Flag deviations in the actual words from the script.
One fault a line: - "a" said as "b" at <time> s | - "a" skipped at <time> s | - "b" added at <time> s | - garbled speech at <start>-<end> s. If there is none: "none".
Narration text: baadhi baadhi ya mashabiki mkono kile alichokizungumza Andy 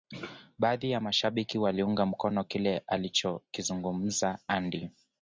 - "baadhi" skipped at 0.9 s
- "waliunga" added at 1.6 s